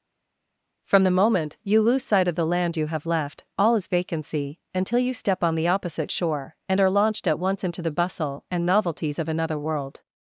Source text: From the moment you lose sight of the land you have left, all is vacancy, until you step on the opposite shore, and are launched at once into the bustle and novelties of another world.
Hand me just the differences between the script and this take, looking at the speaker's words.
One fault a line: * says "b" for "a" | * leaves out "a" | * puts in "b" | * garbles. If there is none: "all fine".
all fine